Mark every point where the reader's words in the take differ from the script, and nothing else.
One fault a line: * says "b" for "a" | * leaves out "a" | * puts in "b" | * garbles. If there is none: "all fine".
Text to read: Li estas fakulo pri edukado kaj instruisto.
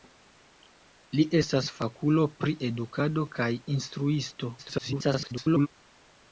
* garbles